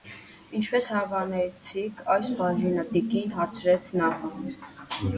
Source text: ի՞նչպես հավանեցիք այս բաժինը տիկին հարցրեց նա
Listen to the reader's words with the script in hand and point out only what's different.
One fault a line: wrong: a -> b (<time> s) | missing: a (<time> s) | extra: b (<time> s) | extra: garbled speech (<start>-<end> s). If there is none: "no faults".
no faults